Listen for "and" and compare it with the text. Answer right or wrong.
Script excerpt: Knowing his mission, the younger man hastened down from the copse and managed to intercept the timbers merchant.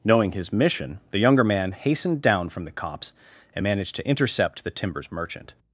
right